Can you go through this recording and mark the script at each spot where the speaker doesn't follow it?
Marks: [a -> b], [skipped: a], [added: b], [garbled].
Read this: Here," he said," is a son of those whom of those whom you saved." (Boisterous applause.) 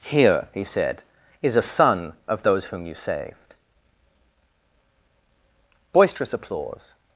Here," he said," is a son of those whom [skipped: of those whom] you saved." (Boisterous applause.)